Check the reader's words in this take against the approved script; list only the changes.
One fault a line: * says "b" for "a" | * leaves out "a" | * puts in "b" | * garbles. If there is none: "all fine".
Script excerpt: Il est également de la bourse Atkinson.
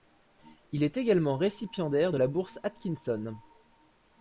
* puts in "récipiendaire"